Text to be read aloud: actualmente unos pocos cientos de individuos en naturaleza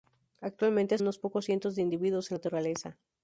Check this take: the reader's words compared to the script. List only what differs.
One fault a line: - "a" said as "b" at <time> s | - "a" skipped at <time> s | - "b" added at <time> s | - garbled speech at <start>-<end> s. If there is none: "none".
none